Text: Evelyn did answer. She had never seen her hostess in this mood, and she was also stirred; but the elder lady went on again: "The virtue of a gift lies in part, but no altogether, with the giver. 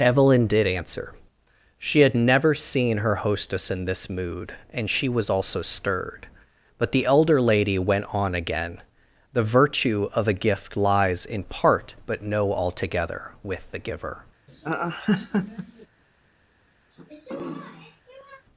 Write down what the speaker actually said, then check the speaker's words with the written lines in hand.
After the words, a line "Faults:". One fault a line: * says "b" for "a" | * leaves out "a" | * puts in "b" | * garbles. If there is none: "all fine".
Evelyn did answer. She had never seen her hostess in this mood, and she was also stirred; but the elder lady went on again: "The virtue of a gift lies in part, but no altogether, with the giver.
Faults:
all fine